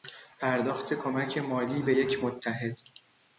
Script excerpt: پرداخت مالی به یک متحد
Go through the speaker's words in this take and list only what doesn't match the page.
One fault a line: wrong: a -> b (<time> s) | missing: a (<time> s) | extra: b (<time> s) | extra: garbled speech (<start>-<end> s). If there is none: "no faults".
extra: کمک (0.9 s)